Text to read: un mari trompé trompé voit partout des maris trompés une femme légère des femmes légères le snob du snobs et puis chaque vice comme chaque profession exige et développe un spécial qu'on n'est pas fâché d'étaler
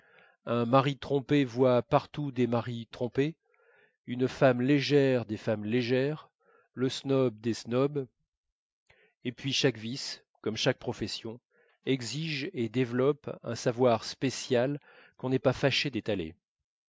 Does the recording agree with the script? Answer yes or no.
no